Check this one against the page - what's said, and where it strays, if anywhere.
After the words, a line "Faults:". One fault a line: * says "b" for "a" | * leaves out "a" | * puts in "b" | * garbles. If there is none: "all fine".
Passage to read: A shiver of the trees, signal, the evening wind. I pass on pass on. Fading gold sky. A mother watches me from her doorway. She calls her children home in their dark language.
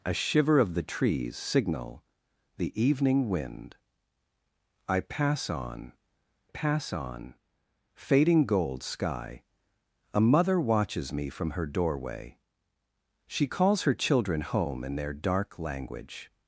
A shiver of the trees, signal, the evening wind. I pass on pass on. Fading gold sky. A mother watches me from her doorway. She calls her children home in their dark language.
Faults:
all fine